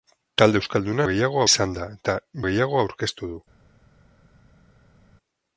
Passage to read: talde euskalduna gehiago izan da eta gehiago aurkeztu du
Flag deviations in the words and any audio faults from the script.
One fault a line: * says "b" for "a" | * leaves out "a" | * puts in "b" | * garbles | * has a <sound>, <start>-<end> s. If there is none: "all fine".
all fine